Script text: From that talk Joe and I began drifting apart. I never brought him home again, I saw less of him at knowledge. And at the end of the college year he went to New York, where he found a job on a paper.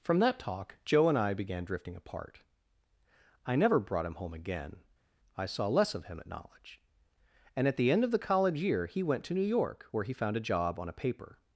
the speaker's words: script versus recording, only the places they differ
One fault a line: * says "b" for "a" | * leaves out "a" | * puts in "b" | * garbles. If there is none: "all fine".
all fine